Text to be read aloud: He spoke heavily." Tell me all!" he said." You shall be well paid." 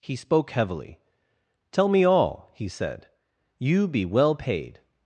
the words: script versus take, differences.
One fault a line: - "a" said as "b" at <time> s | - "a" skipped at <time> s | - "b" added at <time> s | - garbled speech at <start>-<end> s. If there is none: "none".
- "shall" skipped at 3.9 s